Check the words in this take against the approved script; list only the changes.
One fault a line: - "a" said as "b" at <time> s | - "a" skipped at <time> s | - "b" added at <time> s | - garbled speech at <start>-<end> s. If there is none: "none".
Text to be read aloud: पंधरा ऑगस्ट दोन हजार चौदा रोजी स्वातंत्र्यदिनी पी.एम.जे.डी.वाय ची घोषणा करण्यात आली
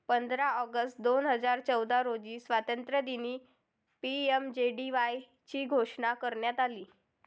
none